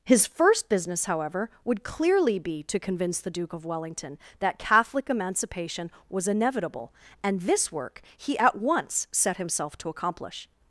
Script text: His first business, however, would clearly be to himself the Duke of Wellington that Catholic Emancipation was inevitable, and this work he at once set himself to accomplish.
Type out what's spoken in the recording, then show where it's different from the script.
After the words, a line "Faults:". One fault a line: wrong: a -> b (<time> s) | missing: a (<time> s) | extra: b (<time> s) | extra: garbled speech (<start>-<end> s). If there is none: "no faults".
His first business, however, would clearly be to convince the Duke of Wellington that Catholic Emancipation was inevitable, and this work he at once set himself to accomplish.
Faults:
wrong: himself -> convince (2.8 s)